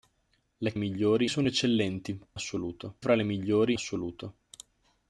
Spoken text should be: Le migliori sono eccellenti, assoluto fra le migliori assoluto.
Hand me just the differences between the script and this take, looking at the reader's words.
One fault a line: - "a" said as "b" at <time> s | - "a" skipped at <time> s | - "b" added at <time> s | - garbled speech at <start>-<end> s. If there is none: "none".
none